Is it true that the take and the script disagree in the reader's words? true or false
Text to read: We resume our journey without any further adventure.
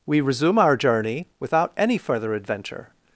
false